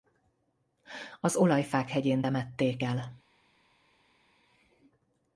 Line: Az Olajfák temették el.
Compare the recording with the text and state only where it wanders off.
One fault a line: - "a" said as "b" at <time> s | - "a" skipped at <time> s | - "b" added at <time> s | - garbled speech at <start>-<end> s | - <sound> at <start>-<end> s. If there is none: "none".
- "hegyén" added at 1.9 s